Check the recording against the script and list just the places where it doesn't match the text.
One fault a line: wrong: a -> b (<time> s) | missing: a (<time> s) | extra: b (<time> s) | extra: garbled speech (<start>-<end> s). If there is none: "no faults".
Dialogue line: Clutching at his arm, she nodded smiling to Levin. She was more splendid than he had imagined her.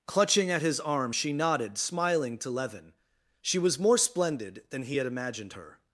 no faults